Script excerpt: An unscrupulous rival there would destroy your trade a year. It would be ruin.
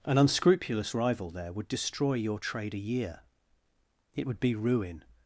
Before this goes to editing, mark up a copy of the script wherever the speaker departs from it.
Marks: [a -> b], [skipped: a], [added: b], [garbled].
An unscrupulous rival there would destroy your trade a year. It would be ruin.